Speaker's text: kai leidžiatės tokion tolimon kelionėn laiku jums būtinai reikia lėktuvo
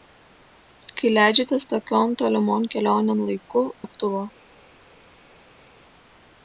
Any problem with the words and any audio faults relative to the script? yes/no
yes